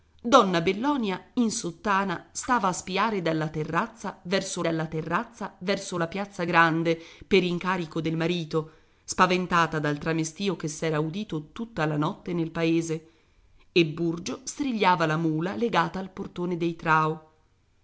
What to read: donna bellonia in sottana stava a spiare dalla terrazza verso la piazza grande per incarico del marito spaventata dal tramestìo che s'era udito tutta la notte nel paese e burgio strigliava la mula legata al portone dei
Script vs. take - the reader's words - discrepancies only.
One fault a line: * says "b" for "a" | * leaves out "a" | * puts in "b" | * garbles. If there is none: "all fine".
* puts in "dalla terrazza verso"